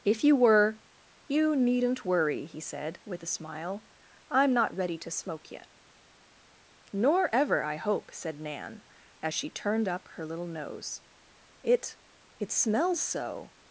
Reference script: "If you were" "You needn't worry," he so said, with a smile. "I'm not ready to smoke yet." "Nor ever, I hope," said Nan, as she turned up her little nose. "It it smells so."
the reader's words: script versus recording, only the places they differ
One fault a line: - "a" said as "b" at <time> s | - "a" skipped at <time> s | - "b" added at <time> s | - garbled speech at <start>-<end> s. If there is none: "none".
- "so" skipped at 2.6 s